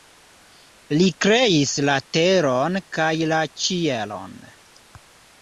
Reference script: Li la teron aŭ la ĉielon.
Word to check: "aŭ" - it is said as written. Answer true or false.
false